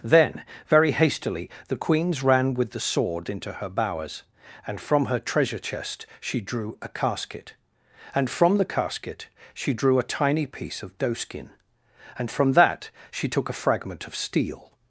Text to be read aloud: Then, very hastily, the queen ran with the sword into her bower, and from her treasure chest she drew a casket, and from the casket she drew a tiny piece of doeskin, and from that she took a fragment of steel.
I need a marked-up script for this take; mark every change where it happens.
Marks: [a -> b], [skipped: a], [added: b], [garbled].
Then, very hastily, the [queen -> queens] ran with the sword into her [bower, -> bowers] and from her treasure chest she drew a casket, and from the casket she drew a tiny piece of doeskin, and from that she took a fragment of steel.